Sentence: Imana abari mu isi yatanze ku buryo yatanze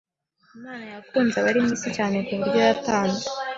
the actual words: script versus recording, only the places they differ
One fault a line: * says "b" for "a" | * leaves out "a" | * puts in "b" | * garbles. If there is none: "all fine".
* puts in "yakunze"
* says "cyane" for "yatanze"